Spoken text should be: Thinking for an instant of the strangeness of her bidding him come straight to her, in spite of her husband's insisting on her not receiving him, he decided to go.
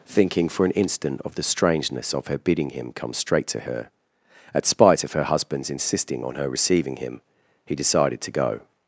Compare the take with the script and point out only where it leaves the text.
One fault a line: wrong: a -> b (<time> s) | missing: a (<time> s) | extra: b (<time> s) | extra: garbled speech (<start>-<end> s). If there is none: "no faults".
wrong: in -> at (4.5 s)
missing: not (6.5 s)